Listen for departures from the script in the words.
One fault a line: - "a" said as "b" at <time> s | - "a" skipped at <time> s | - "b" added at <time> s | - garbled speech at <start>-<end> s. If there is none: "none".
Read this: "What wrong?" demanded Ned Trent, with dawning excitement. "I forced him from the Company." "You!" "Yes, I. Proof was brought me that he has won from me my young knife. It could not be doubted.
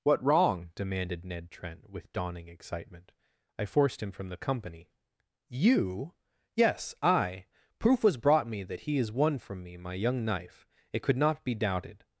none